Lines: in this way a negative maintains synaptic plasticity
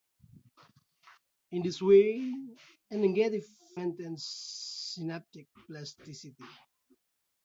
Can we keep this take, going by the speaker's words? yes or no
yes